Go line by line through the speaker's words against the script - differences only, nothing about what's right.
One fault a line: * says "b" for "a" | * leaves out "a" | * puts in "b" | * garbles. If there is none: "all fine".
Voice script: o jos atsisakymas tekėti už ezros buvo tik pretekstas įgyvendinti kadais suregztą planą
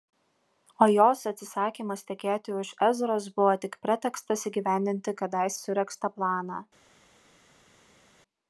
all fine